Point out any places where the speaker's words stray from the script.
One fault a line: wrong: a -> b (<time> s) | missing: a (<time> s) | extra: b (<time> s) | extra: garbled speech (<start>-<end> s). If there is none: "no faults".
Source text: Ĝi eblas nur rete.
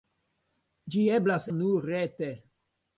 no faults